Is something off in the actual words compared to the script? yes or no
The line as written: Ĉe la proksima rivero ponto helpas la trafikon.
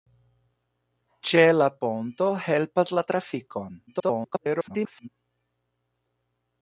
yes